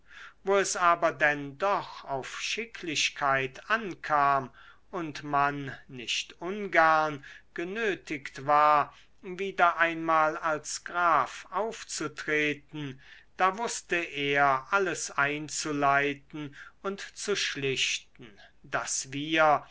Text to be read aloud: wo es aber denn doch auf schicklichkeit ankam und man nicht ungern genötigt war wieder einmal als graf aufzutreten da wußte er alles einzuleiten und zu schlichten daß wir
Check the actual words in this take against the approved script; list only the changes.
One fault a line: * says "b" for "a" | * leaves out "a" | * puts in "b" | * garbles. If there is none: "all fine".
all fine